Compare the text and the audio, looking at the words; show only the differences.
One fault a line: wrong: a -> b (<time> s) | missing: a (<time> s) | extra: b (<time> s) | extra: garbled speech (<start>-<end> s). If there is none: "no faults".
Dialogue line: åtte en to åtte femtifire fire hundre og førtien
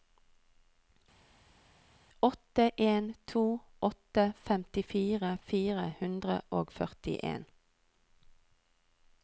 no faults